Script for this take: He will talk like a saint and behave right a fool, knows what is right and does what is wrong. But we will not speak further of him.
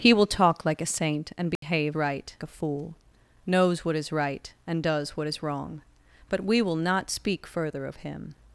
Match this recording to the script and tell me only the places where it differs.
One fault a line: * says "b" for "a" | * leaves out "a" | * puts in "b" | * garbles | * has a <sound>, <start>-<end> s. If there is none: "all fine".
* has a dropout, 1.6-1.6 s